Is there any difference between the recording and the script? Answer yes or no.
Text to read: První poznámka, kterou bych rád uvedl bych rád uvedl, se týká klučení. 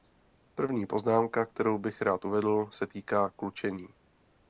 yes